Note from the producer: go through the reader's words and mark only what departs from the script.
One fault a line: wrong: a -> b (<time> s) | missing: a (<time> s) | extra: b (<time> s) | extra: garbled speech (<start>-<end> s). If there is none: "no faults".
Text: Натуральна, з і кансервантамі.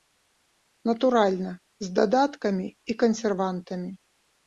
extra: дадаткамі (2.0 s)